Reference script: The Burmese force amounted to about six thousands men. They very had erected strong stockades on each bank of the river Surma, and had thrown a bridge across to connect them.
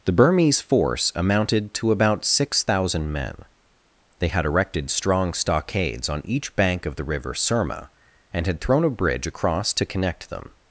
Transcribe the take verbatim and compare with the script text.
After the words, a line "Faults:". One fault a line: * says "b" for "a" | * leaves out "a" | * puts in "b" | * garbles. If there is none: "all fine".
The Burmese force amounted to about six thousand men. They had erected strong stockades on each bank of the river Surma, and had thrown a bridge across to connect them.
Faults:
* says "thousand" for "thousands"
* leaves out "very"